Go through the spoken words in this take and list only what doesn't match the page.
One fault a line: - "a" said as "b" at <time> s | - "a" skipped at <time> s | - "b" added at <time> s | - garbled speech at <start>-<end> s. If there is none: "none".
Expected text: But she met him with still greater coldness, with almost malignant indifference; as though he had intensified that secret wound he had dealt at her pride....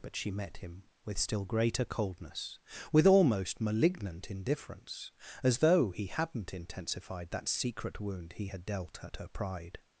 - "had" said as "hadn't" at 6.1 s